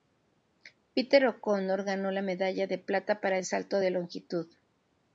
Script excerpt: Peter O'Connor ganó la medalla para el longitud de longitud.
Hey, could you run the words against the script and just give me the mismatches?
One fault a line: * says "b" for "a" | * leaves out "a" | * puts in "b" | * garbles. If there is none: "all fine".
* puts in "de plata"
* says "salto" for "longitud"